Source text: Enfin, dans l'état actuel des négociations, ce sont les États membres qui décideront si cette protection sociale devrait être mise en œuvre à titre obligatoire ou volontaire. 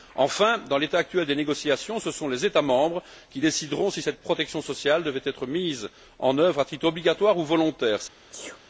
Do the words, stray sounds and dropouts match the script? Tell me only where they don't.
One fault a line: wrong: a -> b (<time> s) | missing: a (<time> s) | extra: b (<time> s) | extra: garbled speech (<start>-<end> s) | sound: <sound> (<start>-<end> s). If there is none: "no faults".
sound: sneeze (8.3-8.6 s)